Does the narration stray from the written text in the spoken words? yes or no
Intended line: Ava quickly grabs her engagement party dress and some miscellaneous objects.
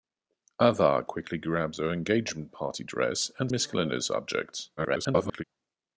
yes